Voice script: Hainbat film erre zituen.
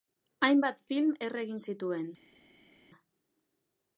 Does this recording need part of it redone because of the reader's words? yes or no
yes